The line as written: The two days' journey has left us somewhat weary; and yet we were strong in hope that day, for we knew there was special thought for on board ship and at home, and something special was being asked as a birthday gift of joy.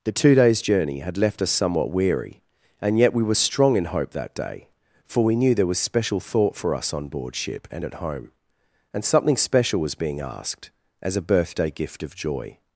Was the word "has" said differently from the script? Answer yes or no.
yes